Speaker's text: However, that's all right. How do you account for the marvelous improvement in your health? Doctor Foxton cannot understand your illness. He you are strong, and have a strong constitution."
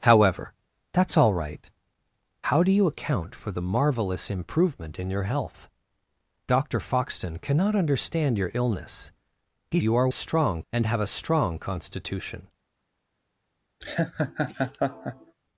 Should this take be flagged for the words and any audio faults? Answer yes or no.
yes